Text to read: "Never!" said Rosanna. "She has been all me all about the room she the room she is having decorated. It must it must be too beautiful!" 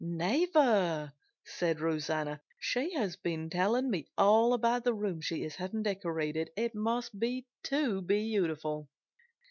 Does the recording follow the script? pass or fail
fail